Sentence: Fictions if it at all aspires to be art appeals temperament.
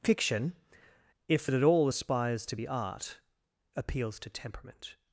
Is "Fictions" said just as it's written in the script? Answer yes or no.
no